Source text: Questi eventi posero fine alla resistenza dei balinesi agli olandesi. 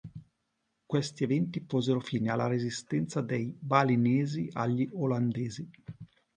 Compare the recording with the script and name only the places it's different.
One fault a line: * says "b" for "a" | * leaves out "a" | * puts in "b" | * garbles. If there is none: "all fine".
all fine